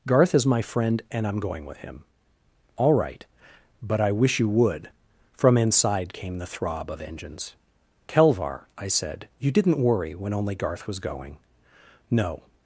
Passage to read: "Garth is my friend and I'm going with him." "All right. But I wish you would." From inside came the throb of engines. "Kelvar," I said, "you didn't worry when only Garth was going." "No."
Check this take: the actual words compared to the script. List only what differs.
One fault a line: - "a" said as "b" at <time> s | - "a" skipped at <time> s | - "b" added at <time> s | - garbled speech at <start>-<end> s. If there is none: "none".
none